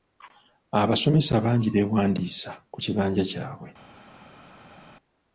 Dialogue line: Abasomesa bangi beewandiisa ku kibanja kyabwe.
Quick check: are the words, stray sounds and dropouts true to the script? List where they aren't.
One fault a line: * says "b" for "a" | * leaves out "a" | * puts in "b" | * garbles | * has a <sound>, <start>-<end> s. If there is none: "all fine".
all fine